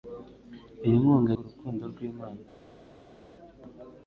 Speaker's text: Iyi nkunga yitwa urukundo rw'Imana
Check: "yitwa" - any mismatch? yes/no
yes